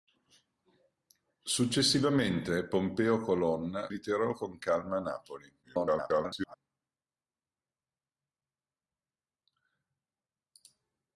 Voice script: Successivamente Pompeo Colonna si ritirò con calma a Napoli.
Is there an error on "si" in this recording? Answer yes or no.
yes